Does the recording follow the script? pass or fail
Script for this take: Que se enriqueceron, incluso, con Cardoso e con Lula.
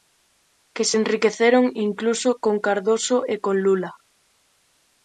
pass